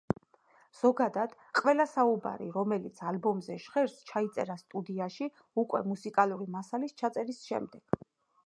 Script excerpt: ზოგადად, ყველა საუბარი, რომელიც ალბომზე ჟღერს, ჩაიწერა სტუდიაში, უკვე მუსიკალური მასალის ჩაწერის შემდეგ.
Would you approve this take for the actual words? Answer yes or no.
yes